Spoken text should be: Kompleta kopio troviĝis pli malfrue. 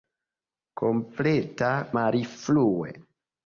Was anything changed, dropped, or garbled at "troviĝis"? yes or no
yes